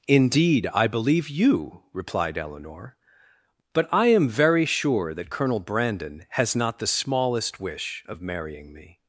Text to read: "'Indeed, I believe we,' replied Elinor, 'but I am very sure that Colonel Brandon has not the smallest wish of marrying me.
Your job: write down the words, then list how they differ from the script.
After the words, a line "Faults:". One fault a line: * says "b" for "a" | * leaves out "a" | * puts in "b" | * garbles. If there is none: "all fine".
"'Indeed, I believe you,' replied Elinor, 'but I am very sure that Colonel Brandon has not the smallest wish of marrying me.
Faults:
* says "you" for "we"